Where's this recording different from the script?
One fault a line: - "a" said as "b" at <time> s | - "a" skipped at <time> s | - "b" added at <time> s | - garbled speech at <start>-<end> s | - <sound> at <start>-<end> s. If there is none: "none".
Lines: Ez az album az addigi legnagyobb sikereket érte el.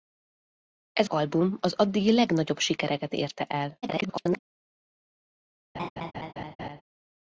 - "az" skipped at 1.1 s
- garbled speech at 3.8-4.4 s
- laugh at 5.7-6.8 s